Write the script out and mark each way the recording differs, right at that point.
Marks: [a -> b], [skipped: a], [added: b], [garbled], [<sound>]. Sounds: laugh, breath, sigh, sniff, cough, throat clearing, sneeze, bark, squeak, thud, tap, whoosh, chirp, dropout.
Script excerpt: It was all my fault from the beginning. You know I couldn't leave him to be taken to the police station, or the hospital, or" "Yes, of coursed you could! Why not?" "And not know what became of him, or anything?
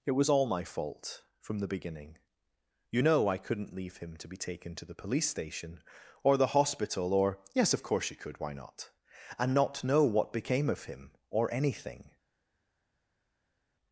It was all my fault from the beginning. You know I couldn't leave him to be taken to the police station, or the hospital, or" "Yes, of [coursed -> course] you could! Why not?" "And not know what became of him, or anything?